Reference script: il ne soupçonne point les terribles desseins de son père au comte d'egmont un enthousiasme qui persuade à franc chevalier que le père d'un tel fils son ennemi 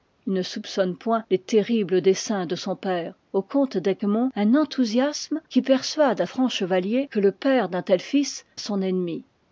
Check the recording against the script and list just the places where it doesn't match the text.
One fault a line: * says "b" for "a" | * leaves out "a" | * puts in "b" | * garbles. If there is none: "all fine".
all fine